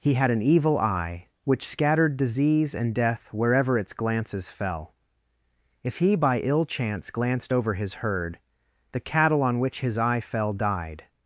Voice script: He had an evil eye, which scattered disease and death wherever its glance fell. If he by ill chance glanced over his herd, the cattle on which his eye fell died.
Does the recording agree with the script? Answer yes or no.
no